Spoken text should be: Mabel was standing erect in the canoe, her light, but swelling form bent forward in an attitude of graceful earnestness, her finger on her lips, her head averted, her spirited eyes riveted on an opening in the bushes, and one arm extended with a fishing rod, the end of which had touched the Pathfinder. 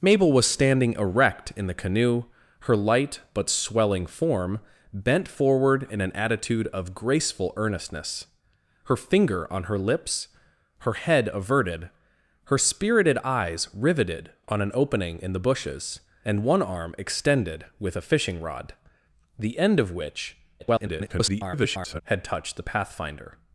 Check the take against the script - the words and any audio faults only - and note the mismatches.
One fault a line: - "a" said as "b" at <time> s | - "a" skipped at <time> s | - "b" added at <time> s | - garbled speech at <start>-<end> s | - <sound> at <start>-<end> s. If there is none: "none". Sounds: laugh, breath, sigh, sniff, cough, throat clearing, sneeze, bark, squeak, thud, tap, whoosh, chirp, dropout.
- garbled speech at 20.6-22.0 s